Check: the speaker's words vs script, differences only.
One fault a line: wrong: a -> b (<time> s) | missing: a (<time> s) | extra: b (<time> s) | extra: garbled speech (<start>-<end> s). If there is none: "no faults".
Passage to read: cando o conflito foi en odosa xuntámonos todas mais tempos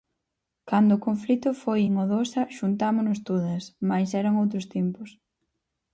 extra: eran outros (4.2 s)